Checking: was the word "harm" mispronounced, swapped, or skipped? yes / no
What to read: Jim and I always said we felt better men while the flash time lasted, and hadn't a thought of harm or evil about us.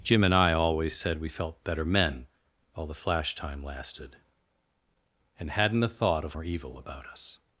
yes